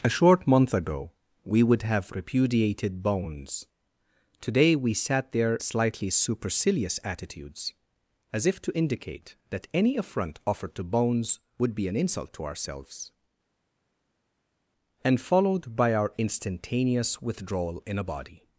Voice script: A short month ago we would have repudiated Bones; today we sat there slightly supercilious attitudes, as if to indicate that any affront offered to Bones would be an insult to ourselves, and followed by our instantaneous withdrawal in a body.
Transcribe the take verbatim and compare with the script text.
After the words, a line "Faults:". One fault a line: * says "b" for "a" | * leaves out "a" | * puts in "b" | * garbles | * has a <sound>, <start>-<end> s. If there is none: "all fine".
A short month ago we would have repudiated Bones; today we sat there slightly supercilious attitudes, as if to indicate that any affront offered to Bones would be an insult to ourselves, and followed by our instantaneous withdrawal in a body.
Faults:
all fine